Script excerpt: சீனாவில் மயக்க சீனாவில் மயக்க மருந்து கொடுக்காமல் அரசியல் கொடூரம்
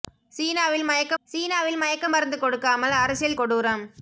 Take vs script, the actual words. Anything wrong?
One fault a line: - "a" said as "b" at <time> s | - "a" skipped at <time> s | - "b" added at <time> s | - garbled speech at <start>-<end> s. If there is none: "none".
none